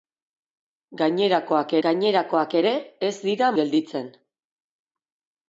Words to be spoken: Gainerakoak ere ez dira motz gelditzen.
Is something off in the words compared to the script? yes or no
yes